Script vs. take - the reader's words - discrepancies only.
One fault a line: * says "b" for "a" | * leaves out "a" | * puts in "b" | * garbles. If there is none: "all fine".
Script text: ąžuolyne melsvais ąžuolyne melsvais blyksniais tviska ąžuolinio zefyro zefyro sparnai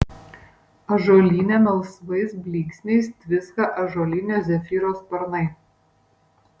* leaves out "ąžuolyne melsvais"
* leaves out "zefyro"